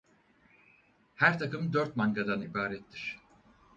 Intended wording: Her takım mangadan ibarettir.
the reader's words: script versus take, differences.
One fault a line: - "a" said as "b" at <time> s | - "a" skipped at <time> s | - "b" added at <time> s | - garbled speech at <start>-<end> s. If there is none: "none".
- "dört" added at 1.7 s